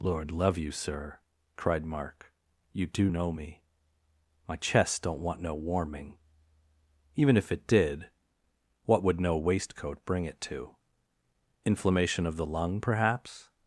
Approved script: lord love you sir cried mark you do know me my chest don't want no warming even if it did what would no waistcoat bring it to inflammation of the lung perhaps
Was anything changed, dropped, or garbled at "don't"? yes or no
no